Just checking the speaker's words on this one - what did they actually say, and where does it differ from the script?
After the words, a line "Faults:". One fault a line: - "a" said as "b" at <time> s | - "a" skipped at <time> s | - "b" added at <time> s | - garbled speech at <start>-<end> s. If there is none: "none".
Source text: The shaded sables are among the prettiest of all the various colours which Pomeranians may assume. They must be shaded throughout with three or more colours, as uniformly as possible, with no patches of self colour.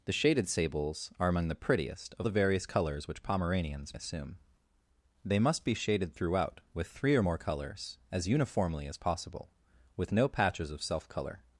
The shaded sables are among the prettiest of the various colours which Pomeranians assume. They must be shaded throughout with three or more colours, as uniformly as possible, with no patches of self colour.
Faults:
- "all" skipped at 2.3 s
- "may" skipped at 4.0 s